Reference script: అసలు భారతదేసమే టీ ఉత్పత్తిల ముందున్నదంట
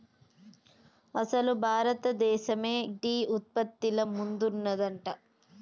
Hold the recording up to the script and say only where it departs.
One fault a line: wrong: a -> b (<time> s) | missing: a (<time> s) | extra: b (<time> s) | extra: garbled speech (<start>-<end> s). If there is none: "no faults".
no faults